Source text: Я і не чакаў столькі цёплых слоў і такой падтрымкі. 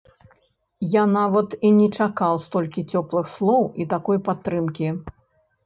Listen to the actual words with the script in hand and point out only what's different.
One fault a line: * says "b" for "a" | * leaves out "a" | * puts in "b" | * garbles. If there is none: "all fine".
* puts in "нават"